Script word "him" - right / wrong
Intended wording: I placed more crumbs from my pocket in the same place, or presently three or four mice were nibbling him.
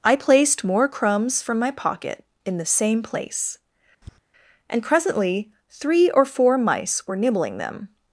wrong